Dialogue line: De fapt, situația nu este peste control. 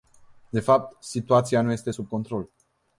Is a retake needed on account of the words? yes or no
yes